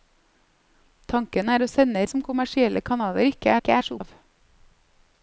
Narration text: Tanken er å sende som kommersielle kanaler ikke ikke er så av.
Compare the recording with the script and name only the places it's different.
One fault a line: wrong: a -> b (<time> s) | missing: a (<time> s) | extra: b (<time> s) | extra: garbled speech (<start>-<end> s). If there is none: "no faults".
no faults